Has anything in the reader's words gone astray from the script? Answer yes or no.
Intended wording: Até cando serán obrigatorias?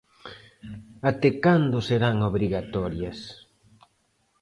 no